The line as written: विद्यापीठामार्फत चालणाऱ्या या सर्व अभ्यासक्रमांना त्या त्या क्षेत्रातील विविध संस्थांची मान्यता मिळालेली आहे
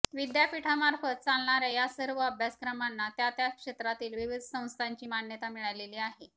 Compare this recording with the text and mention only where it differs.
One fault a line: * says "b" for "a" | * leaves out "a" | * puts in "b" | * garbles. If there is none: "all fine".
all fine